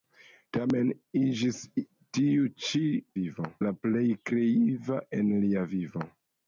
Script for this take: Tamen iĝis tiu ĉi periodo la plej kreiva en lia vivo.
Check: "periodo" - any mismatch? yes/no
yes